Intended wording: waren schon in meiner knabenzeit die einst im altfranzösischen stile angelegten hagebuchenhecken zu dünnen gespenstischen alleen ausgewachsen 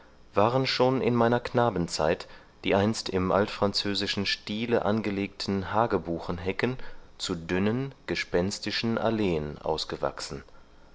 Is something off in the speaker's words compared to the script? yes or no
no